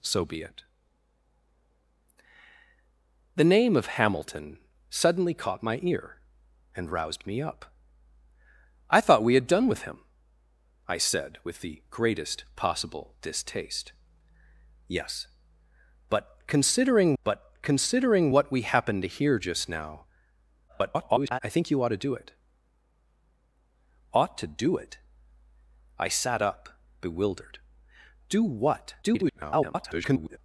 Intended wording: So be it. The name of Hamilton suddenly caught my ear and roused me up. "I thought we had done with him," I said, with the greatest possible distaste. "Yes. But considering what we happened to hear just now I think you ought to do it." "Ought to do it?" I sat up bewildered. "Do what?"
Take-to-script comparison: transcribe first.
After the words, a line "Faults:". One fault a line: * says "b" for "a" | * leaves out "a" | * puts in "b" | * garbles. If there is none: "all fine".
So be it. The name of Hamilton suddenly caught my ear and roused me up. "I thought we had done with him," I said, with the greatest possible distaste. "Yes. But considering but considering what we happened to hear just now [garbled] I think you ought to do it." "Ought to do it?" I sat up bewildered. "Do what?" [garbled]
Faults:
* puts in "but considering"
* garbles
* garbles